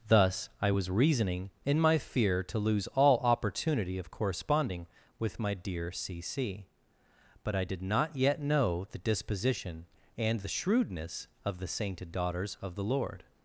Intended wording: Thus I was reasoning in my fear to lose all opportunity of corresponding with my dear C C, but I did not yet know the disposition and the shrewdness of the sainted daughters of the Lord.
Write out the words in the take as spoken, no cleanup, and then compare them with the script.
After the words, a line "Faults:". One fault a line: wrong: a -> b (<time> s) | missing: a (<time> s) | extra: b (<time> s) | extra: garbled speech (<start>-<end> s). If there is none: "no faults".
Thus I was reasoning in my fear to lose all opportunity of corresponding with my dear C C, but I did not yet know the disposition and the shrewdness of the sainted daughters of the Lord.
Faults:
no faults